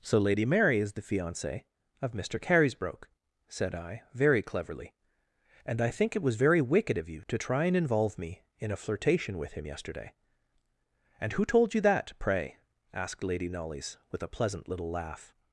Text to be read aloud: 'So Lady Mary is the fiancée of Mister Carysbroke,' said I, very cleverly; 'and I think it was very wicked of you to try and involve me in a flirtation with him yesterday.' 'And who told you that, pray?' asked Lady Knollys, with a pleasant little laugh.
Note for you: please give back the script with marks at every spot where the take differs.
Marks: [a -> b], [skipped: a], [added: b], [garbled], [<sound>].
'So Lady Mary is the fiancée of Mister Carysbroke,' said I, very cleverly; 'and I think it was very wicked of you to try and involve me in a flirtation with him yesterday.' 'And who told you that, pray?' asked Lady Knollys, with a pleasant little laugh.